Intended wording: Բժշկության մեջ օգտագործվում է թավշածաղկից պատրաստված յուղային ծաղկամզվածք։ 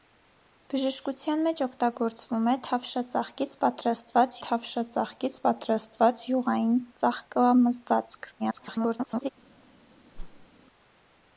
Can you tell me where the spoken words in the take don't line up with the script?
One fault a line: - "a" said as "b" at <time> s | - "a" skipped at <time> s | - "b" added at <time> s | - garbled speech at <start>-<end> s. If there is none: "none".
- "թավշածաղկից պատրաստված" added at 4.5 s
- garbled speech at 8.4-9.3 s